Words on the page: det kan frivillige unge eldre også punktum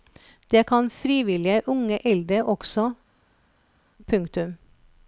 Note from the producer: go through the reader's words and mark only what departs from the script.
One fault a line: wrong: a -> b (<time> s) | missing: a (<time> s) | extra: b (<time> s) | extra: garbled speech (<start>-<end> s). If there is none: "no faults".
no faults